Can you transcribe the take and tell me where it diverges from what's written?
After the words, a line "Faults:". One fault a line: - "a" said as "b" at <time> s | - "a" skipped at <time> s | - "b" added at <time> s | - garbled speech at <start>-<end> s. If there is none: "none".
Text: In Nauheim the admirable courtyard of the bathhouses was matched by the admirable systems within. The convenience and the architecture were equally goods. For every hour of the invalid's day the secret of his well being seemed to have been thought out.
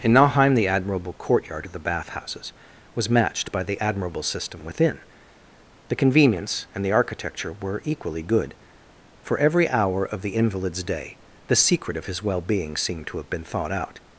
In Nauheim the admirable courtyard of the bathhouses was matched by the admirable system within. The convenience and the architecture were equally good. For every hour of the invalid's day the secret of his well being seemed to have been thought out.
Faults:
- "systems" said as "system" at 4.2 s
- "goods" said as "good" at 8.2 s